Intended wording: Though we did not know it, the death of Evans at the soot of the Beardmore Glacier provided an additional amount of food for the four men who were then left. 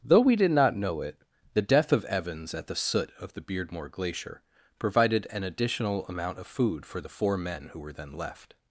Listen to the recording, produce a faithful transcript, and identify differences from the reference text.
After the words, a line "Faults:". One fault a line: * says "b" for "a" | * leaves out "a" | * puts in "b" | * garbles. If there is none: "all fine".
Though we did not know it, the death of Evans at the soot of the Beardmore Glacier provided an additional amount of food for the four men who were then left.
Faults:
all fine